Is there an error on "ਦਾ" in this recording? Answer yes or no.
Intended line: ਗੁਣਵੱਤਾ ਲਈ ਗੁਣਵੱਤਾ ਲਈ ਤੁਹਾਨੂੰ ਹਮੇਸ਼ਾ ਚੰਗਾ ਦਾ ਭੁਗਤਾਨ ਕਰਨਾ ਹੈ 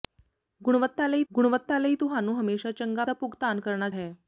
no